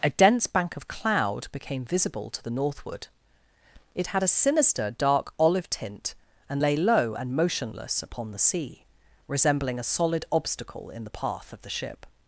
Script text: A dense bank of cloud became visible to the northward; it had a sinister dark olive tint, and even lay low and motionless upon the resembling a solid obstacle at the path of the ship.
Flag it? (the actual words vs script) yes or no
yes